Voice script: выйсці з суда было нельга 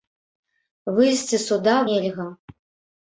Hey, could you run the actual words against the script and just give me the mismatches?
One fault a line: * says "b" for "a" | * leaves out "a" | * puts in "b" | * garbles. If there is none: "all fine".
* leaves out "было"